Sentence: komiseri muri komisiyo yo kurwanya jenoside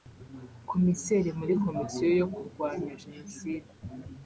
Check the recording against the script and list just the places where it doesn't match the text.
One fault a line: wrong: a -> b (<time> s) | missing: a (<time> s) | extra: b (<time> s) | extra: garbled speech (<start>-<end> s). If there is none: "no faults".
no faults